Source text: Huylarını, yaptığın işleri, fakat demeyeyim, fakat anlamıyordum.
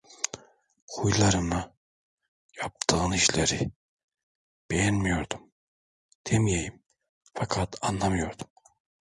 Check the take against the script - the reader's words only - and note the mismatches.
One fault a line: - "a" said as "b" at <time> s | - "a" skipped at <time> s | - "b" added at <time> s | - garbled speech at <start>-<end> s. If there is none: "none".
- "fakat" said as "beğenmiyordum" at 4.7 s